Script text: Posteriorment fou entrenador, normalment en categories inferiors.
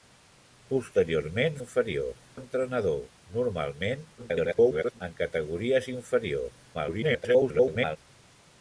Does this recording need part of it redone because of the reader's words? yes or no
yes